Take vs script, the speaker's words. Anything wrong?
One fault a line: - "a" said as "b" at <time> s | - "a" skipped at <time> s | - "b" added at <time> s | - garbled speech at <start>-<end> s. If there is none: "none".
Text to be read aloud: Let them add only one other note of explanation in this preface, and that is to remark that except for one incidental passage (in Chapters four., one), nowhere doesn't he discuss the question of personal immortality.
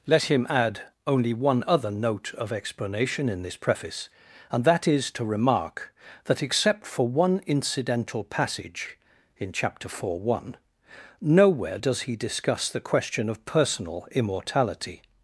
- "them" said as "him" at 0.2 s
- "Chapters" said as "Chapter" at 9.5 s
- "doesn't" said as "does" at 11.8 s